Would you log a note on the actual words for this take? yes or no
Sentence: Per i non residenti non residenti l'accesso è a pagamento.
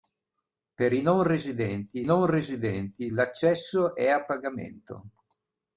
no